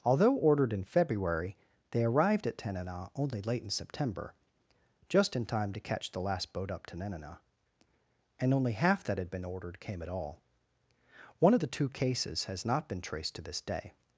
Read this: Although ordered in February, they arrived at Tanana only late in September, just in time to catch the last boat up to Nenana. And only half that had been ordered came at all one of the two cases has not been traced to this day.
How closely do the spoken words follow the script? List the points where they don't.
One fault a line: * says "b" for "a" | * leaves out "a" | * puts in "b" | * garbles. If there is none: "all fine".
all fine